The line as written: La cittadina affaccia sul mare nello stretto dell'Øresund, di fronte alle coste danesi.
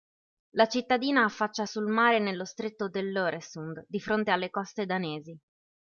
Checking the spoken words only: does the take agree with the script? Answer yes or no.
yes